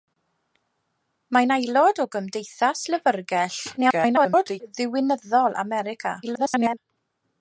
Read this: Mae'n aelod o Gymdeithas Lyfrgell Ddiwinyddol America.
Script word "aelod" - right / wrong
right